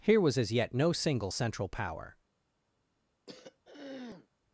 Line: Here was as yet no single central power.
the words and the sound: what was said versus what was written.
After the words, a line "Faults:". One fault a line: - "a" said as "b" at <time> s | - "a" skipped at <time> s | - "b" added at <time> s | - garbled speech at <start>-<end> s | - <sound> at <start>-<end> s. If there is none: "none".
Here was as yet no single central power.
Faults:
- throat clearing at 3.3-4.3 s